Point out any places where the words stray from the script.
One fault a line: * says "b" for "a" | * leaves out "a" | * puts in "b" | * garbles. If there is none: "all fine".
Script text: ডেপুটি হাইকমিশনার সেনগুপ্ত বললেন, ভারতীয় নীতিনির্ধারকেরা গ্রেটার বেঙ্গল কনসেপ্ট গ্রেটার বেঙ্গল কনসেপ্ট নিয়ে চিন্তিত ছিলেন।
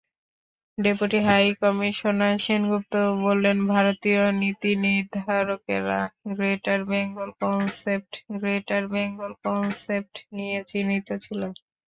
all fine